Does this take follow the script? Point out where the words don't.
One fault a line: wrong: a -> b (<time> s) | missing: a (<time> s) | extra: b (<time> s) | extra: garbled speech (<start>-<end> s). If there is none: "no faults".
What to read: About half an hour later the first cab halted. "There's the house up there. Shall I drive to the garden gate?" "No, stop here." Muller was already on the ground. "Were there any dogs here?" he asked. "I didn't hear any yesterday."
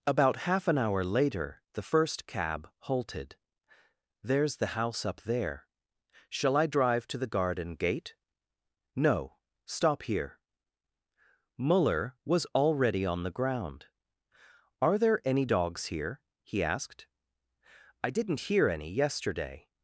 wrong: Were -> Are (14.8 s)